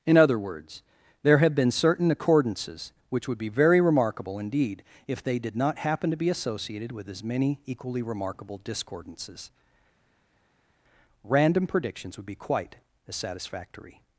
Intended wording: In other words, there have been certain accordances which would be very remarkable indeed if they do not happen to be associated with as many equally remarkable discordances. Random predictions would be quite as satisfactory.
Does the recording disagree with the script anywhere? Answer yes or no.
yes